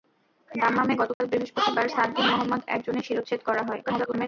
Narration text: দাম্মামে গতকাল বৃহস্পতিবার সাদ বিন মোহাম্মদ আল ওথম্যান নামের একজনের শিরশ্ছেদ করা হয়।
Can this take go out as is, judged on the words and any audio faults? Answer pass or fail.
fail